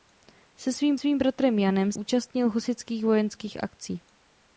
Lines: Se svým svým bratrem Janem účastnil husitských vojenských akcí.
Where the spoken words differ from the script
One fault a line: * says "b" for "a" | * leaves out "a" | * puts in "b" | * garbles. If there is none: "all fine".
all fine